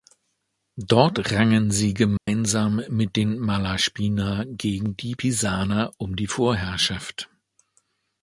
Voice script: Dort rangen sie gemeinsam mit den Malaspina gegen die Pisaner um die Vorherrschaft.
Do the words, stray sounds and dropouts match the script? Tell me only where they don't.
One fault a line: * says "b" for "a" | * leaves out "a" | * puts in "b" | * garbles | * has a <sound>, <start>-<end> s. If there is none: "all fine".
* has a dropout, 2.2-2.3 s